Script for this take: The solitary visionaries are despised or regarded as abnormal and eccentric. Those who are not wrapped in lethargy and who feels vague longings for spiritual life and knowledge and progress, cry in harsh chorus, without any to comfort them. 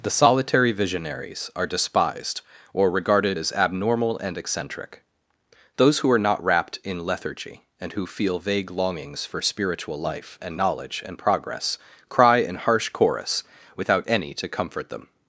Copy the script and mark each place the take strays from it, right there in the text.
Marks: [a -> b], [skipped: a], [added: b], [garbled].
The solitary visionaries are despised or regarded as abnormal and eccentric. Those who are not wrapped in lethargy and who [feels -> feel] vague longings for spiritual life and knowledge and progress, cry in harsh chorus, without any to comfort them.